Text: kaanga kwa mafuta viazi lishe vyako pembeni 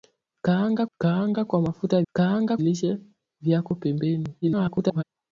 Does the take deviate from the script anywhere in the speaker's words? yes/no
yes